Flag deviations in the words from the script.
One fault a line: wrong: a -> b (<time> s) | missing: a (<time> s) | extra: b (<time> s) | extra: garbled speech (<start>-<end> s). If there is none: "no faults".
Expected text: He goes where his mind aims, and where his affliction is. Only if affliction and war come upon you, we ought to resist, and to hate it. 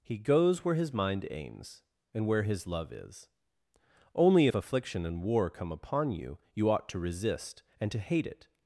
wrong: affliction -> love (2.7 s)
wrong: we -> you (6.5 s)